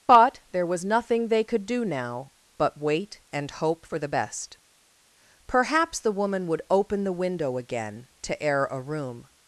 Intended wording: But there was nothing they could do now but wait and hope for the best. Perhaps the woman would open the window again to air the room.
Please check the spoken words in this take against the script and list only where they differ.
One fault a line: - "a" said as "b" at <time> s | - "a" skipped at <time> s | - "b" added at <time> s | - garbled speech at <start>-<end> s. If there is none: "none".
- "the" said as "a" at 8.6 s